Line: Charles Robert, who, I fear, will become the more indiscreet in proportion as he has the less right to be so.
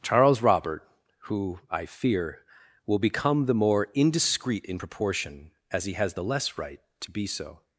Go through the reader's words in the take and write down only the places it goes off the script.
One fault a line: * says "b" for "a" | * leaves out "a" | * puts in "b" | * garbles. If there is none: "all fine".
all fine